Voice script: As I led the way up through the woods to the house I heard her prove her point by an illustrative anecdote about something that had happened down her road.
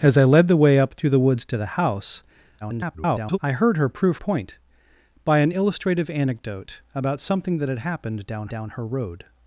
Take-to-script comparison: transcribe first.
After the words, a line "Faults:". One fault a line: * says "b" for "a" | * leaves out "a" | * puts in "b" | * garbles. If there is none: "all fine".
As I led the way up through the woods to the house [garbled] I heard her prove point by an illustrative anecdote about something that had happened down down her road.
Faults:
* garbles
* leaves out "her"
* puts in "down"